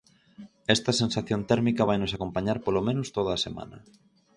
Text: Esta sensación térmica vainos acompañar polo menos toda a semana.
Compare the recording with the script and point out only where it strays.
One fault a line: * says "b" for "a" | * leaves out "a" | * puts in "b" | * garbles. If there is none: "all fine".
all fine